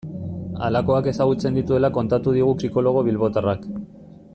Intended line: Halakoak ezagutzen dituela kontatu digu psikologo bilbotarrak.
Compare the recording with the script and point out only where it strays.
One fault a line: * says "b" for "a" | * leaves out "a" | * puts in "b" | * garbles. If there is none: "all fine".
all fine